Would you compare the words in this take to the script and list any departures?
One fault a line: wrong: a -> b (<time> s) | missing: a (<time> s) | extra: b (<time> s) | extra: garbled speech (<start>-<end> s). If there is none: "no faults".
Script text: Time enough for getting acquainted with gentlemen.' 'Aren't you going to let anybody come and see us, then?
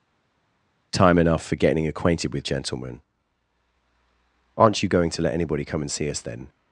no faults